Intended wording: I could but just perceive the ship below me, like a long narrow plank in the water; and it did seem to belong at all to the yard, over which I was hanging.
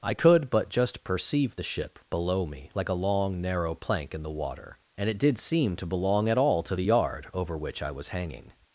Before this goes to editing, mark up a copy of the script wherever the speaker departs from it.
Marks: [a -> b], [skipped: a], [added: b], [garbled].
I could but just perceive the ship below me, like a long narrow plank in the water; and it did seem to belong at all to the yard, over which I was hanging.